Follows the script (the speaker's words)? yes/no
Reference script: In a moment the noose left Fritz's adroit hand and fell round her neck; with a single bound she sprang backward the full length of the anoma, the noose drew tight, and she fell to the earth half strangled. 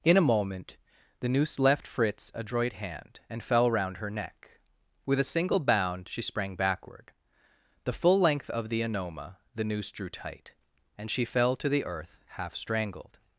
yes